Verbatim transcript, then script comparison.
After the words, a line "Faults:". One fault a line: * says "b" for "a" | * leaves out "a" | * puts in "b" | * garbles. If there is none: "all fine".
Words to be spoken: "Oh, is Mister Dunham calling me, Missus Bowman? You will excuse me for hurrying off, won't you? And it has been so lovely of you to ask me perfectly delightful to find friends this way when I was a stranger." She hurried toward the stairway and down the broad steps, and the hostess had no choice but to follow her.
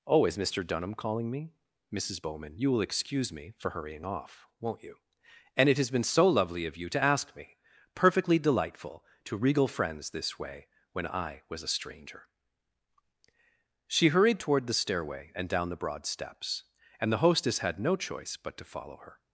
"Oh, is Mister Dunham calling me, Missus Bowman? You will excuse me for hurrying off, won't you? And it has been so lovely of you to ask me perfectly delightful to regal friends this way when I was a stranger." She hurried toward the stairway and down the broad steps, and the hostess had no choice but to follow her.
Faults:
* says "regal" for "find"